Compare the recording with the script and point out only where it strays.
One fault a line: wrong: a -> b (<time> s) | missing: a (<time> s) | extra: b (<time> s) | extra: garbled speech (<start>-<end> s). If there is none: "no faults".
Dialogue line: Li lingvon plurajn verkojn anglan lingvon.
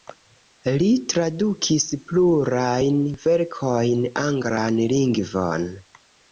wrong: lingvon -> tradukis (1.1 s)